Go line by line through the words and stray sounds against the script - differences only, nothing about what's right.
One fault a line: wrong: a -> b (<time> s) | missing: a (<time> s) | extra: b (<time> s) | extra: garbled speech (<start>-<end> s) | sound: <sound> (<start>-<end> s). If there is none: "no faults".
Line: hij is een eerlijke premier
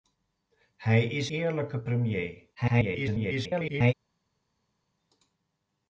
missing: een (1.3 s)
extra: garbled speech (2.5-3.9 s)